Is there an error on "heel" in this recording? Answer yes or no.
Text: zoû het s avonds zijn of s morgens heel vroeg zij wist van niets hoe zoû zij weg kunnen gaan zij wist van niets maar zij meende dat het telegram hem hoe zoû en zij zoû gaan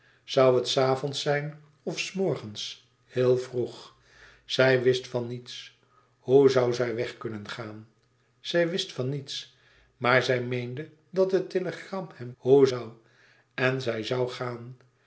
no